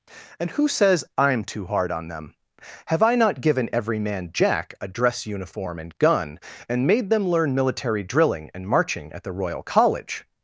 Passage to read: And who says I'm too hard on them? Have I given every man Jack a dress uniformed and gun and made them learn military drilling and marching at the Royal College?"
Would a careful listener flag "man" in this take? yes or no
no